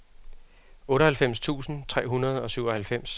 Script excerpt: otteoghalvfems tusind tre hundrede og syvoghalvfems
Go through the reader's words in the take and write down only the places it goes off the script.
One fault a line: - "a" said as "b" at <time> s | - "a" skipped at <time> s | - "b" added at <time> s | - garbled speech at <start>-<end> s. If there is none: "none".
none